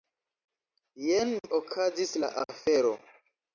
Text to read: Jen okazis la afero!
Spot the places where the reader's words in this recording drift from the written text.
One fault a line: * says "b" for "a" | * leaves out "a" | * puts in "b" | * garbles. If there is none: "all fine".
all fine